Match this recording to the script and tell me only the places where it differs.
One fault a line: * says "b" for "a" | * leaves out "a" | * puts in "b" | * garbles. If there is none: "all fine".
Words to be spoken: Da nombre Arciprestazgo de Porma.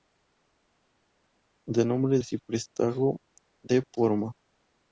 all fine